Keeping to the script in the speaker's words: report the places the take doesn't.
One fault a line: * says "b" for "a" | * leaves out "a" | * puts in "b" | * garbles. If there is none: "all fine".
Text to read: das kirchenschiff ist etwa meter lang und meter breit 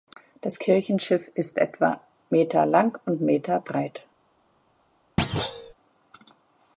all fine